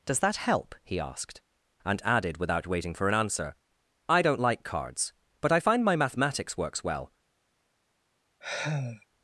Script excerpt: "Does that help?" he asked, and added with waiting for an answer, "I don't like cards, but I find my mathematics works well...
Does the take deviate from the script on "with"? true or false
true